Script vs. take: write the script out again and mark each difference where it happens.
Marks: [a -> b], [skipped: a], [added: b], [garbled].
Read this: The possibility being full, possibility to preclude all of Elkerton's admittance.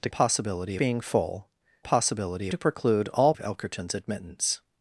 The possibility being full, possibility to preclude all of Elkerton's admittance.